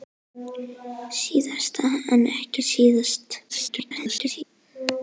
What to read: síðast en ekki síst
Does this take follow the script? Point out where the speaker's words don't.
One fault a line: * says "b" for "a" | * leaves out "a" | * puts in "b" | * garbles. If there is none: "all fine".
* garbles